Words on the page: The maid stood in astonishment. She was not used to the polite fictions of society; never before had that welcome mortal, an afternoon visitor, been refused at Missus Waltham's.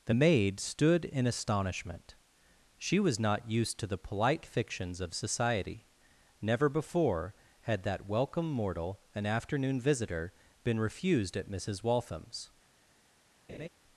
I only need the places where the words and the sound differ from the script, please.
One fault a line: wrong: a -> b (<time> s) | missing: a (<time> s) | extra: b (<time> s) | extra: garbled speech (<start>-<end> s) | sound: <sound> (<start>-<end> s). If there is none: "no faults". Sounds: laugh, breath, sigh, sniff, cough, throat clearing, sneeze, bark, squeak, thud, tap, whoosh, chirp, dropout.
sound: laugh (13.5-13.7 s)